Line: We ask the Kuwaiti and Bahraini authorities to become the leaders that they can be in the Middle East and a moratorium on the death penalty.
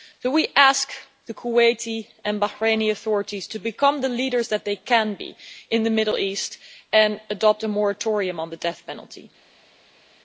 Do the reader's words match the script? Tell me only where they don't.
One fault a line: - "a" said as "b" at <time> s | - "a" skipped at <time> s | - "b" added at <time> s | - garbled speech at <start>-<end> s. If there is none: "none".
- "adopt" added at 7.3 s